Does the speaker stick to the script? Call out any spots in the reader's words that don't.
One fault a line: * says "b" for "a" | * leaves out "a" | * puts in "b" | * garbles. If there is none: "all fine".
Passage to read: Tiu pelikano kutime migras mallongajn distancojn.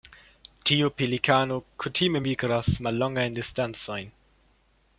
all fine